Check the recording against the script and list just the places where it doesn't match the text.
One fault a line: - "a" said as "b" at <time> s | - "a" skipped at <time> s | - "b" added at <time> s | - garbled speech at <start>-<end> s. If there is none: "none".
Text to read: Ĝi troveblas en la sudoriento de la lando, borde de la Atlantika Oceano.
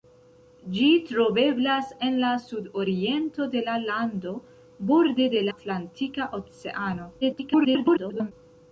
- "la" skipped at 5.5 s
- garbled speech at 7.2-8.3 s